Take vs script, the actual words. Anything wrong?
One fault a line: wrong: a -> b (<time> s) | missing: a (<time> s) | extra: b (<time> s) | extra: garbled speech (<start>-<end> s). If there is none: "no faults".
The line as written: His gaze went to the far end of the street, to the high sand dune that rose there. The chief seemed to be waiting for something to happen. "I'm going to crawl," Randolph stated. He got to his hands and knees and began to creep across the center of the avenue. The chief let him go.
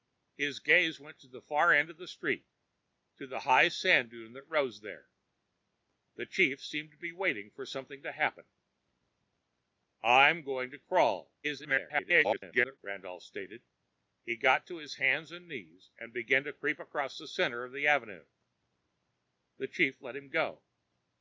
extra: garbled speech (11.4-12.8 s)